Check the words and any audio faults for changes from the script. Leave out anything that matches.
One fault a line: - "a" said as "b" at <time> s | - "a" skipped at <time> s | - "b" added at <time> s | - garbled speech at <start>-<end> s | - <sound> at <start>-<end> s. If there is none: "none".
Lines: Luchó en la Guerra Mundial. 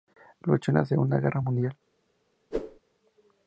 - "Segunda" added at 0.8 s
- whoosh at 2.5-2.8 s